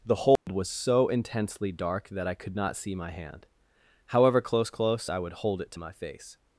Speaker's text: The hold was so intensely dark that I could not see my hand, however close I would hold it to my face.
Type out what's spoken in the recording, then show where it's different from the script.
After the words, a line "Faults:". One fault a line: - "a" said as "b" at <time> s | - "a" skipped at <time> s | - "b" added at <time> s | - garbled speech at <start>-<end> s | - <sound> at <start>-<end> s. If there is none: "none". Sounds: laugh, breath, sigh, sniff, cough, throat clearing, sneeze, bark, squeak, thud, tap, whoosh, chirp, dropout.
The hold was so intensely dark that I could not see my hand, however close close I would hold it to my face.
Faults:
- dropout at 0.4-0.5 s
- "close" added at 4.7 s